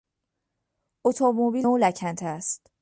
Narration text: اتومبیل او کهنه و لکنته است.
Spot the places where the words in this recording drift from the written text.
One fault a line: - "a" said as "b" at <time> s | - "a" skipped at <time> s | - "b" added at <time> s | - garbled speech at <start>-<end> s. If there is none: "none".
- "او کهنه" skipped at 1.7 s